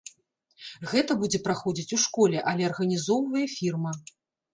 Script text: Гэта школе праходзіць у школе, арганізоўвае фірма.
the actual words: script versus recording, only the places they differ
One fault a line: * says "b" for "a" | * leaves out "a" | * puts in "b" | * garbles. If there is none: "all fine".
* says "будзе" for "школе"
* puts in "але"